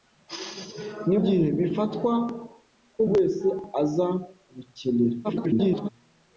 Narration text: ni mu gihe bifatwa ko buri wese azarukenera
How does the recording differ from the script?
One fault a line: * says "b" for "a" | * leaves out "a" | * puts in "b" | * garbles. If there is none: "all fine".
* leaves out "mu"
* leaves out "buri"
* garbles